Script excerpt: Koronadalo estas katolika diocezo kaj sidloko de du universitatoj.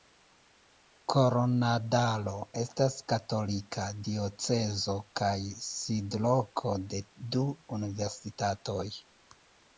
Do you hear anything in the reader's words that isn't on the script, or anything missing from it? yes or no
no